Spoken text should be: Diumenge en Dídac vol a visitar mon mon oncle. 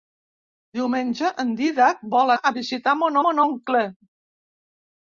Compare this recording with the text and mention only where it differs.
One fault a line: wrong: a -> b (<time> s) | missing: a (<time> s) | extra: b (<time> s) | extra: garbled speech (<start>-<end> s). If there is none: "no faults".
no faults